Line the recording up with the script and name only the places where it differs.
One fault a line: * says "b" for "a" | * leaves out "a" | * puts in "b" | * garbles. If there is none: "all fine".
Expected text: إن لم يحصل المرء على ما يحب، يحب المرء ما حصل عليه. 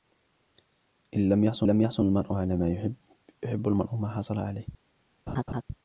* puts in "لم يحصل"